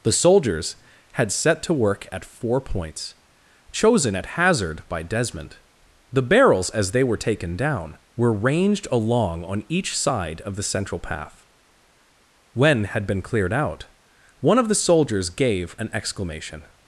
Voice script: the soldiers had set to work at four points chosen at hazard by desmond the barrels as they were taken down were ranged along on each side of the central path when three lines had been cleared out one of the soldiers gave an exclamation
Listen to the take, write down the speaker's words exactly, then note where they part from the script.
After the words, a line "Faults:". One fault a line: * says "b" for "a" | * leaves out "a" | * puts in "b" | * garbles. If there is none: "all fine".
the soldiers had set to work at four points chosen at hazard by desmond the barrels as they were taken down were ranged along on each side of the central path when had been cleared out one of the soldiers gave an exclamation
Faults:
* leaves out "three lines"